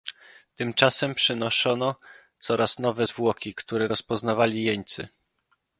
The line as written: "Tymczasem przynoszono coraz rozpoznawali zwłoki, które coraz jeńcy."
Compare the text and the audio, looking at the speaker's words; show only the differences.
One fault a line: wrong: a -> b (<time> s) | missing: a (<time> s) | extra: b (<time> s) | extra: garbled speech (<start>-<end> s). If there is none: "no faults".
wrong: rozpoznawali -> nowe (2.8 s)
wrong: coraz -> rozpoznawali (3.8 s)